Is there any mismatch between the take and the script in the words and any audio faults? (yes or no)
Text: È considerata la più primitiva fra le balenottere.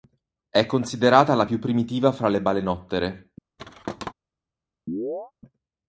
yes